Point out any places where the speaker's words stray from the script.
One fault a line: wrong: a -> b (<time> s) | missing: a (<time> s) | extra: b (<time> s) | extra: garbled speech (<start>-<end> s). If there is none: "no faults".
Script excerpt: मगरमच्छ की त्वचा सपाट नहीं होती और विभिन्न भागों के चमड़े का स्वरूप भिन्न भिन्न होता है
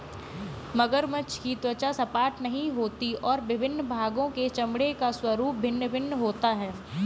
no faults